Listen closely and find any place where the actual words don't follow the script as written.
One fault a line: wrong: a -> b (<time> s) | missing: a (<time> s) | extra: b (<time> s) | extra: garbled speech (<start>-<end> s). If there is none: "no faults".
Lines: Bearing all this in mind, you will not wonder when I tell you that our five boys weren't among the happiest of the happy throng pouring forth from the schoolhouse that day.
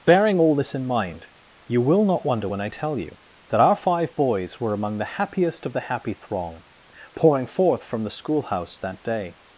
wrong: weren't -> were (4.6 s)